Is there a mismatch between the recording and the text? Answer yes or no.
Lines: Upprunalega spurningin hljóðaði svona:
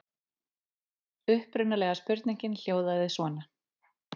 no